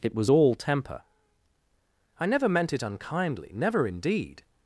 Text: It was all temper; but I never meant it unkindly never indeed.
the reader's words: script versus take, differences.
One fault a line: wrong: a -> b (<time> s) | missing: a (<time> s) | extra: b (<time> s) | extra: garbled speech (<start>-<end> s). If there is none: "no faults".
missing: but (1.0 s)